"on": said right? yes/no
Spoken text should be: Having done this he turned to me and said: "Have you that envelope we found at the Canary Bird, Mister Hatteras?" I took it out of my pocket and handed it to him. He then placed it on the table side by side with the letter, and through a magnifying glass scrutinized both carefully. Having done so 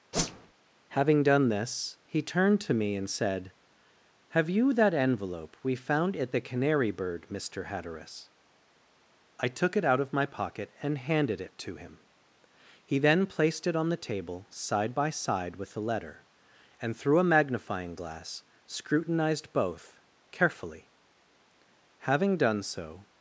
yes